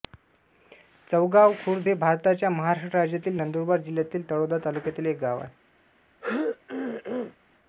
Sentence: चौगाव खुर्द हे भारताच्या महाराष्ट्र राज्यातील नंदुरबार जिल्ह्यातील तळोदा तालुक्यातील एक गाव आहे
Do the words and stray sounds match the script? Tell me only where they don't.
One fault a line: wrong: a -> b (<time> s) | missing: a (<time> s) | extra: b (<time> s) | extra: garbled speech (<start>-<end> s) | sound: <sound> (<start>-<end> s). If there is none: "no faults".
sound: throat clearing (6.2-7.4 s)